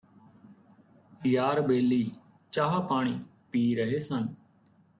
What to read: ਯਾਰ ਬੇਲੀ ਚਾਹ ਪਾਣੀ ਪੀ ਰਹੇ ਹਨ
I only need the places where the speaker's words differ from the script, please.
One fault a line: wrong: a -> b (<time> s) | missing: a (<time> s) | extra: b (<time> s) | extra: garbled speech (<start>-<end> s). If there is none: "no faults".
wrong: ਹਨ -> ਸਨ (4.0 s)